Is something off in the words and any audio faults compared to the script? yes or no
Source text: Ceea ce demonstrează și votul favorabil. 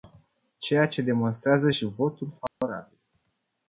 yes